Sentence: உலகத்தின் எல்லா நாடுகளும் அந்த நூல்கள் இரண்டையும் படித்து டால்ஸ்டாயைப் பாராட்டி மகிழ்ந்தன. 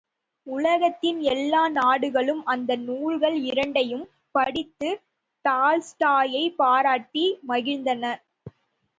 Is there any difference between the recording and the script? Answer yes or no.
no